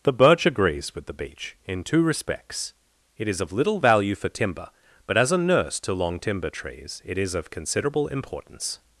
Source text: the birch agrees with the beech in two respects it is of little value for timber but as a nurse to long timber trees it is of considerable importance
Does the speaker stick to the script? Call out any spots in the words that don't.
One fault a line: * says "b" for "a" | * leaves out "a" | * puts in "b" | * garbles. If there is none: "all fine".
all fine